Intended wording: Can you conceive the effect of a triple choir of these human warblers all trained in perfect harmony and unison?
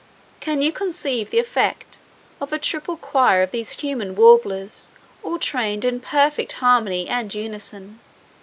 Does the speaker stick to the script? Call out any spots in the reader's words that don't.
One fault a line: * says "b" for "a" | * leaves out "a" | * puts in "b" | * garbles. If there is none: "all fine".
all fine